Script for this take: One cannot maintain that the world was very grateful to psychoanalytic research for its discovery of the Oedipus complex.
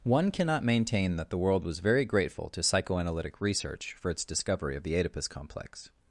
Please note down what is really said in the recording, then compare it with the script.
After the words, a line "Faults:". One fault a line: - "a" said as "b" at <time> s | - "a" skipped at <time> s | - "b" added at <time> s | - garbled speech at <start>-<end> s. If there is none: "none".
One cannot maintain that the world was very grateful to psychoanalytic research for its discovery of the Oedipus complex.
Faults:
none